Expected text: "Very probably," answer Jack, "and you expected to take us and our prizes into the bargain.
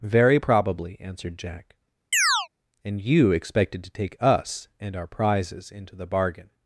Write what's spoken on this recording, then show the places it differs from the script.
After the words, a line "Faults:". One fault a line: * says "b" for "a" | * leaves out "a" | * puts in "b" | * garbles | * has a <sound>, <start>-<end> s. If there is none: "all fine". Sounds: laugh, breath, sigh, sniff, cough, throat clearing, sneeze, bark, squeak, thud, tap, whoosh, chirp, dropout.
"Very probably," answered Jack, "and you expected to take us and our prizes into the bargain.
Faults:
* says "answered" for "answer"
* has a chirp, 2.1-2.5 s